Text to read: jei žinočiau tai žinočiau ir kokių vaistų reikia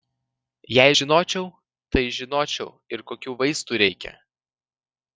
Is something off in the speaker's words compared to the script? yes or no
no